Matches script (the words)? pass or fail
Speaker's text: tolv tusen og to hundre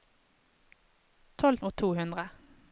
fail